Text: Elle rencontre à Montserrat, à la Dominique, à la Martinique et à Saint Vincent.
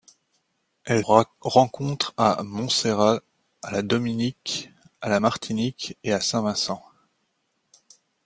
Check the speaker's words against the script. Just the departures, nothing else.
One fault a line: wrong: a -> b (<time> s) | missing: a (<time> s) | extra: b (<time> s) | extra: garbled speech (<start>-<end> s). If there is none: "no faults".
no faults